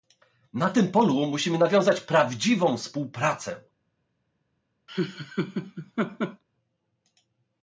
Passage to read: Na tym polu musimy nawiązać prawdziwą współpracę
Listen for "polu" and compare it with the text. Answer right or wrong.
right